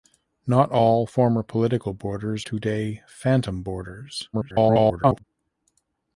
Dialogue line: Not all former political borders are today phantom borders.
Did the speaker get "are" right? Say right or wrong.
wrong